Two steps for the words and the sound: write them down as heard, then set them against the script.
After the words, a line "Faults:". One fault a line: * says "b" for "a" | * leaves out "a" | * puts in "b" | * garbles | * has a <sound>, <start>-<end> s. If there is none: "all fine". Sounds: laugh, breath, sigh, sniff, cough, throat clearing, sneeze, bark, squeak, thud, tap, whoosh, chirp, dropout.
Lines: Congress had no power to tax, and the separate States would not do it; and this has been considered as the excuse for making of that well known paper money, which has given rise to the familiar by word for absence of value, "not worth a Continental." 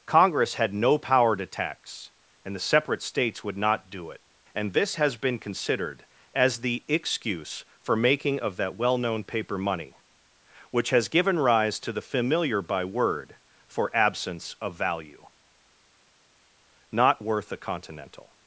Congress had no power to tax, and the separate States would not do it; and this has been considered as the excuse for making of that well known paper money, which has given rise to the familiar by word for absence of value, "not worth a Continental."
Faults:
all fine